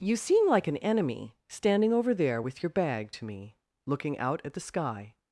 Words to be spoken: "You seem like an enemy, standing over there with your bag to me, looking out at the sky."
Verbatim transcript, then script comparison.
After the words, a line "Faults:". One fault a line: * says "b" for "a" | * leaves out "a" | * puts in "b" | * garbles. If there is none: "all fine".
"You seem like an enemy, standing over there with your bag to me, looking out at the sky."
Faults:
all fine